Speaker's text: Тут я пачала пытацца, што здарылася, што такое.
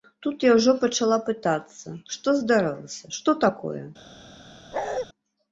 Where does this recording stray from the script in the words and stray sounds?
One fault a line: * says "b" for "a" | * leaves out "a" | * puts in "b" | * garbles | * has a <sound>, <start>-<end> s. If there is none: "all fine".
* puts in "ўжо"
* has a bark, 4.7-5.1 s